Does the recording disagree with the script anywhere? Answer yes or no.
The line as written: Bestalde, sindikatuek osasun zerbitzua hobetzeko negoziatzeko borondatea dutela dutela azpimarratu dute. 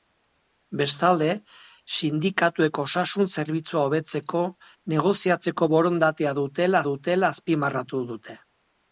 no